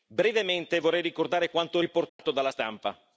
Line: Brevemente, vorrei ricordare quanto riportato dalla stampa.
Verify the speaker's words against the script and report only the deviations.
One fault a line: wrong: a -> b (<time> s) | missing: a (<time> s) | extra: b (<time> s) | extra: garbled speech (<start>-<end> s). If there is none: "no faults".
no faults